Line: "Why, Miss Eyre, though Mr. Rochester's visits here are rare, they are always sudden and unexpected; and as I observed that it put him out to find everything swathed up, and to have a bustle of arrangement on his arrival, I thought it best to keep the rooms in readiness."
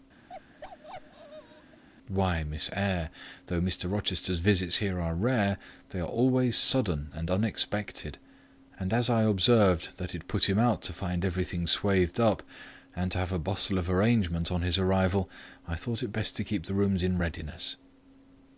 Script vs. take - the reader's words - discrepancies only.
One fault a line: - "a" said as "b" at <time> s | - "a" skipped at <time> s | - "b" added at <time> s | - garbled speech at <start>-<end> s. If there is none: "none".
none